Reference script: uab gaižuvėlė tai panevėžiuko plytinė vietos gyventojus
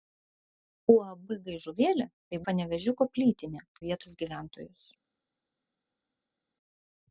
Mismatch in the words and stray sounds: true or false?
false